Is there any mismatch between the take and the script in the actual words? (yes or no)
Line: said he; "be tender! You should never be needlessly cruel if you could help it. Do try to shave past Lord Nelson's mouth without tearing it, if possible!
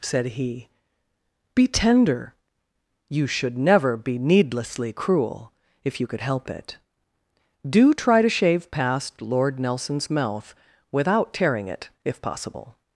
no